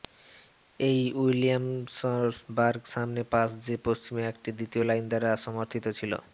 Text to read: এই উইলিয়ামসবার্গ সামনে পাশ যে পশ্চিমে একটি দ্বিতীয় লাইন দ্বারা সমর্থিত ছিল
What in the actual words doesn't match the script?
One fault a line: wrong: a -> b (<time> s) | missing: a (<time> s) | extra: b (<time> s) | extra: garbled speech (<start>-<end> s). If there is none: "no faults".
no faults